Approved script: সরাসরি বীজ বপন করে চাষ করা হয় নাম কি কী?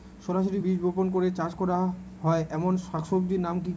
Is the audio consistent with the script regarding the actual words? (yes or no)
no